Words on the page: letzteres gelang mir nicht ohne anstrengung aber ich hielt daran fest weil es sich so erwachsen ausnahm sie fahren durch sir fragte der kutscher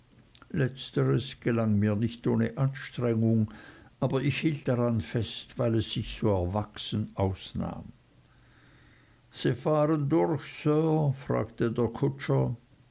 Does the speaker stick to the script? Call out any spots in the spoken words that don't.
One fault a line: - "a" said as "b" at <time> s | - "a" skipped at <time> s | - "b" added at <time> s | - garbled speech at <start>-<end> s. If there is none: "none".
none